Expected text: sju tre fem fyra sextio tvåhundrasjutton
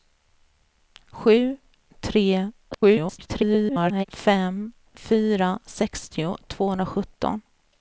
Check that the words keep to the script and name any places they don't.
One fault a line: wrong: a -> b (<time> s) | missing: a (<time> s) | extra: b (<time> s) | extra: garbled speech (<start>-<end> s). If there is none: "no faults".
extra: garbled speech (2.7-4.0 s)